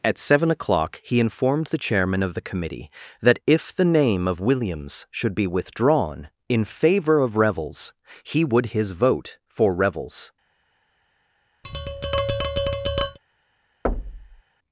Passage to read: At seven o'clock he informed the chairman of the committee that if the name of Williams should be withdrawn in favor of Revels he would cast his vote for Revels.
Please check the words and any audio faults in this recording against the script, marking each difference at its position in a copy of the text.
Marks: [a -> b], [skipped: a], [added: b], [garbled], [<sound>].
At seven o'clock he informed the chairman of the committee that if the name of Williams should be withdrawn in favor of Revels he would [skipped: cast] his vote for Revels. [tap] [thud]